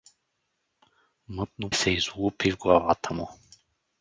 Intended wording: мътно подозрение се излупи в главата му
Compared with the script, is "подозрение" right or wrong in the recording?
wrong